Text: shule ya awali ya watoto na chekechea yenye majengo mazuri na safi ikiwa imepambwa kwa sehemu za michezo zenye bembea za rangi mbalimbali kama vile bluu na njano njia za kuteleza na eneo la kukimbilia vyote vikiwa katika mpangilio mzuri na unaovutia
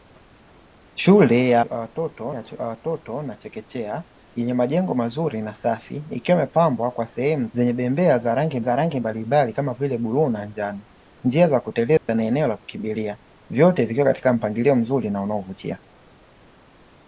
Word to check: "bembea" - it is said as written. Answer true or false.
false